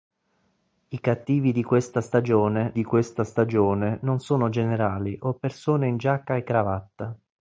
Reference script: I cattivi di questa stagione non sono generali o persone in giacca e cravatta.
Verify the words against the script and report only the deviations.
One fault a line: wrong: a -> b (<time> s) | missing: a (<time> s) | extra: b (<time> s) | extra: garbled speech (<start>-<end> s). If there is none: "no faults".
extra: di questa stagione (2.7 s)